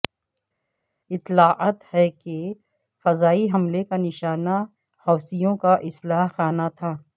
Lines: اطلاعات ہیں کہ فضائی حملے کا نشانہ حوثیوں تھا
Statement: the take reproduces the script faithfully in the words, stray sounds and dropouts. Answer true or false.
false